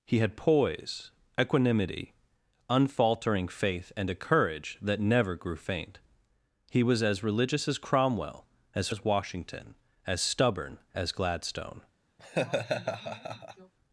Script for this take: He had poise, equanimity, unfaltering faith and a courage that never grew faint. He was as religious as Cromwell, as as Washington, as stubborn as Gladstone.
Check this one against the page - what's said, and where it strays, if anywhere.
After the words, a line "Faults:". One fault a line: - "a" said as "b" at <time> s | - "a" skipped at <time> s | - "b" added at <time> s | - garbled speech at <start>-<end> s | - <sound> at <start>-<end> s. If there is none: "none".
He had poise, equanimity, unfaltering faith and a courage that never grew faint. He was as religious as Cromwell, as as Washington, as stubborn as Gladstone.
Faults:
- laugh at 12.2-13.7 s